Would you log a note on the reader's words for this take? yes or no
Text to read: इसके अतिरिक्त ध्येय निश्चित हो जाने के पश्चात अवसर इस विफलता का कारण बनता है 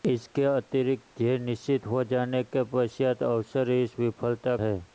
yes